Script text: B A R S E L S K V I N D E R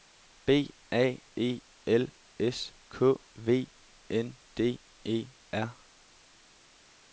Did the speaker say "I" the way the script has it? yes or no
no